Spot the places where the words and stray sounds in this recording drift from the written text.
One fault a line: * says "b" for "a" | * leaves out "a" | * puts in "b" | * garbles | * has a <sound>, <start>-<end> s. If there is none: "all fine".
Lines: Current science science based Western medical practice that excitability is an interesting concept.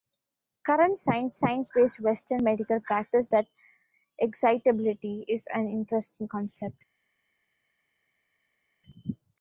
all fine